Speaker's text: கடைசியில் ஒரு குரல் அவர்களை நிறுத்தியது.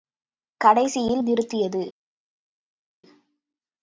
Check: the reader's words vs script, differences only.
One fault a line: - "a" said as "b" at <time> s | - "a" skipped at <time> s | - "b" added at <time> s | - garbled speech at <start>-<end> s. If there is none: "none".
- "ஒரு குரல் அவர்களை" skipped at 1.2 s